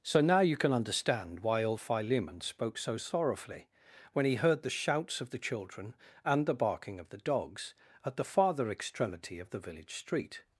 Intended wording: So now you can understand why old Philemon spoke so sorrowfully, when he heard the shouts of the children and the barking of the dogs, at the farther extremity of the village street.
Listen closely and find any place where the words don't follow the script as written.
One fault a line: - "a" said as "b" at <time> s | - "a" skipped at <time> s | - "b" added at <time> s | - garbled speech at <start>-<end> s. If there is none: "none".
none